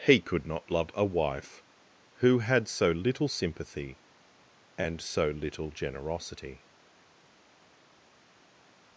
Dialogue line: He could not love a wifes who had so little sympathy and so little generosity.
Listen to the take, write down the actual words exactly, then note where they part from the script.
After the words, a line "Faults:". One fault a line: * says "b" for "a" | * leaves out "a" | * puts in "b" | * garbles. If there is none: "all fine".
He could not love a wife who had so little sympathy and so little generosity.
Faults:
* says "wife" for "wifes"